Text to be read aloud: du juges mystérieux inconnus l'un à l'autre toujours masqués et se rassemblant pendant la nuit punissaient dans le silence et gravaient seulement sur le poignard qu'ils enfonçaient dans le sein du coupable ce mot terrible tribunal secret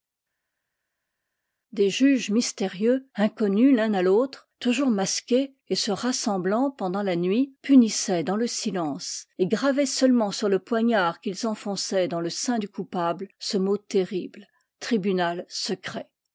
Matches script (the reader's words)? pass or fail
fail